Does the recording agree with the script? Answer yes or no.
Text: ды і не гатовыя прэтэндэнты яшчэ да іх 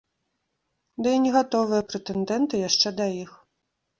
yes